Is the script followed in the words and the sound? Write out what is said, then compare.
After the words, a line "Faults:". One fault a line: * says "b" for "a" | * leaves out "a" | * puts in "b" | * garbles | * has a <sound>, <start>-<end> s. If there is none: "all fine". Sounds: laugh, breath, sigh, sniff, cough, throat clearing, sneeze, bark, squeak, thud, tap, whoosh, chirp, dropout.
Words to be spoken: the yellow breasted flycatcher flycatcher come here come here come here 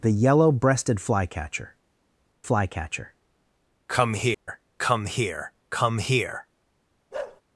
the yellow breasted flycatcher flycatcher come here come here come here
Faults:
* has a dropout, 4.3-4.5 s
* has a bark, 7.1-7.4 s